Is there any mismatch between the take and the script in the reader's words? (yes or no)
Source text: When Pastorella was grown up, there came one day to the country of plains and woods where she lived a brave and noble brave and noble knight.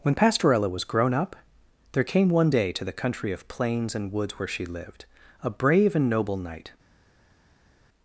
yes